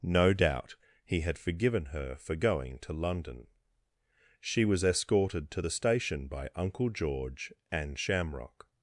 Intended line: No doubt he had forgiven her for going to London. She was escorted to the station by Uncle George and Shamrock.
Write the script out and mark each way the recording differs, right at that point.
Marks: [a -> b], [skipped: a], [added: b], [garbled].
No doubt he had forgiven her for going to London. She was escorted to the station by Uncle George and Shamrock.